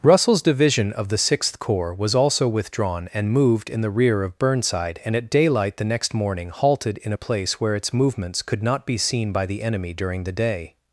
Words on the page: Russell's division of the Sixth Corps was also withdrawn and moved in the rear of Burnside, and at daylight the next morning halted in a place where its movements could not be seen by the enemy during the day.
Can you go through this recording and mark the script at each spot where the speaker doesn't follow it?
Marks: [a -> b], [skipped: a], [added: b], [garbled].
Russell's division of the Sixth Corps was also withdrawn and moved in the rear of Burnside, and at daylight the next morning halted in a place where its movements could not be seen by the enemy during the day.